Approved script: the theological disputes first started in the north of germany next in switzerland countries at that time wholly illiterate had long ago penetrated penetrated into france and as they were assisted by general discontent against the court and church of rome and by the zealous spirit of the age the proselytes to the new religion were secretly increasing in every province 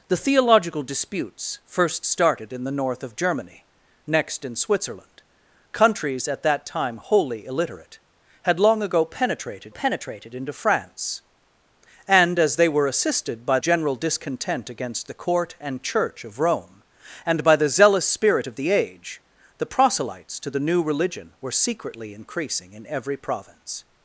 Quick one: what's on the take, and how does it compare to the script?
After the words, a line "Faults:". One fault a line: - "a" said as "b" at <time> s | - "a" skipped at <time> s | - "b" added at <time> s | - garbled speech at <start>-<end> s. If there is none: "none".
the theological disputes first started in the north of germany next in switzerland countries at that time wholly illiterate had long ago penetrated penetrated into france and as they were assisted by general discontent against the court and church of rome and by the zealous spirit of the age the proselytes to the new religion were secretly increasing in every province
Faults:
none